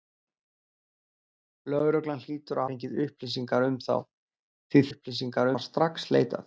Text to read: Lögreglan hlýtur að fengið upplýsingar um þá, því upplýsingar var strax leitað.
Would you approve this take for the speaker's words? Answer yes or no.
yes